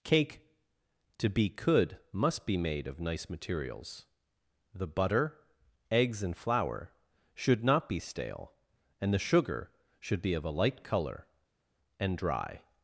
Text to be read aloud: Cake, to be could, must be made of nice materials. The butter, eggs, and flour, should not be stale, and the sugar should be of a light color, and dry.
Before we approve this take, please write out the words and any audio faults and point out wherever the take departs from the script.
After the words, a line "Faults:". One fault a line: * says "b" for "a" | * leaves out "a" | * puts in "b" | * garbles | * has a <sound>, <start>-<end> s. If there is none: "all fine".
Cake, to be could, must be made of nice materials. The butter, eggs, and flour, should not be stale, and the sugar should be of a light color, and dry.
Faults:
all fine